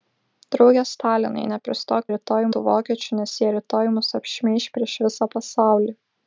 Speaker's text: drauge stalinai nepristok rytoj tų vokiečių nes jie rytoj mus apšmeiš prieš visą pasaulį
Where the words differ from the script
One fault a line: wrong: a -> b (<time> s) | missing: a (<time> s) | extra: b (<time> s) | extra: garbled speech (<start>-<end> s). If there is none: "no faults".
no faults